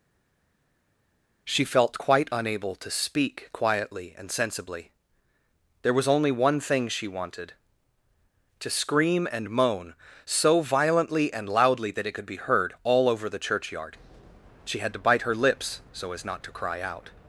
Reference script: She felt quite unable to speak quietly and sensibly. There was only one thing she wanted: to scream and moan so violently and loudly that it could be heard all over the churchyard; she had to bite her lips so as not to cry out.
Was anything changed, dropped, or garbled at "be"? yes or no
no